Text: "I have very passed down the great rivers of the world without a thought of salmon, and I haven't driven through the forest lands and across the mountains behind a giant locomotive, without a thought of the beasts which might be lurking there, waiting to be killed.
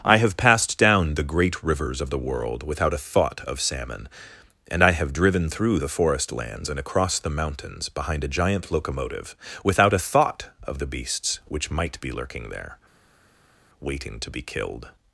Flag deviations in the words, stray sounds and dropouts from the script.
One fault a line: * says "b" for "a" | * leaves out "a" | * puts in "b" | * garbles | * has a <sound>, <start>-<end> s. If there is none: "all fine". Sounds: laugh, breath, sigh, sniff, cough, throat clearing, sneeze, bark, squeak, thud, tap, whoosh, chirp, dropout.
* leaves out "very"
* says "have" for "haven't"